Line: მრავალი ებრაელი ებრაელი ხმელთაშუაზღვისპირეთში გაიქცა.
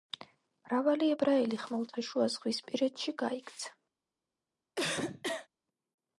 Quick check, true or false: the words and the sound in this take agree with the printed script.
false